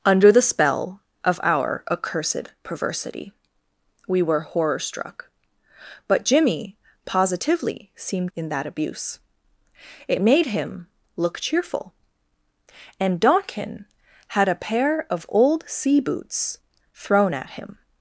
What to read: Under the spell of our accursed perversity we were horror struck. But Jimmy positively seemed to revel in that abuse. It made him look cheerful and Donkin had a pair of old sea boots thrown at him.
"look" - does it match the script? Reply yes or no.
yes